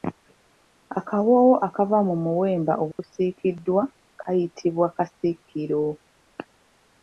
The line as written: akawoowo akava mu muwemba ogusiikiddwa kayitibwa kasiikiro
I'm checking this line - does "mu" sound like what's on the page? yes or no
yes